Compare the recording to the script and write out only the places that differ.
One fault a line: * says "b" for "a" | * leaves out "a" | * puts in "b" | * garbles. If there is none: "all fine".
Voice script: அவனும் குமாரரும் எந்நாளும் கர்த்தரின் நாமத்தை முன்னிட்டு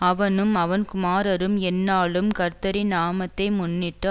* puts in "அவன்"